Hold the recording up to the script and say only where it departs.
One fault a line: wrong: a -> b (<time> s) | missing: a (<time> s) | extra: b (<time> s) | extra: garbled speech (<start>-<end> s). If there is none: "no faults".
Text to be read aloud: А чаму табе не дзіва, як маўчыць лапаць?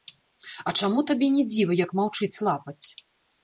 no faults